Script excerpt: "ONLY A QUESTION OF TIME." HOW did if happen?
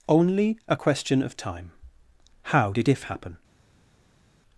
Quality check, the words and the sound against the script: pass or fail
pass